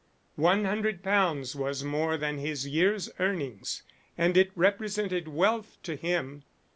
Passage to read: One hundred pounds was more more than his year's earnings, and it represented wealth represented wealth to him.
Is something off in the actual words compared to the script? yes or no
yes